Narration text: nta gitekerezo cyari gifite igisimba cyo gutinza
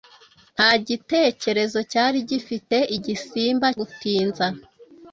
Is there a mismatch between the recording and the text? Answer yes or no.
yes